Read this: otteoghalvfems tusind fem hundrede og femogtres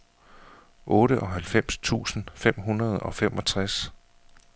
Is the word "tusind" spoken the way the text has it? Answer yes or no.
yes